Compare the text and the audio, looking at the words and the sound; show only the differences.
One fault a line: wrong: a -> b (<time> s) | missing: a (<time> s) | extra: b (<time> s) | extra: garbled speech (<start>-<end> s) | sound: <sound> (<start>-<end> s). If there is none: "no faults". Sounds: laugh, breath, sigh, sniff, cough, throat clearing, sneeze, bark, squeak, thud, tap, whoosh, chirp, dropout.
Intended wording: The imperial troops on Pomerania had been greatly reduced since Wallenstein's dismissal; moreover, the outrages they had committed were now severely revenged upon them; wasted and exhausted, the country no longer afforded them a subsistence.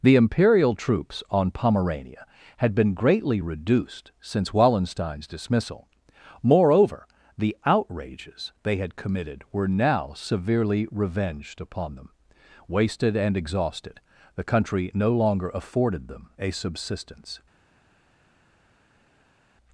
no faults